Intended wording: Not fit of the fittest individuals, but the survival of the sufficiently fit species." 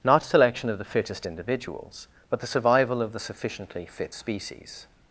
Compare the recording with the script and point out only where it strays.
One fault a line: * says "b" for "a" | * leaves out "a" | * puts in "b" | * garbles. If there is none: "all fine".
* says "selection" for "fit"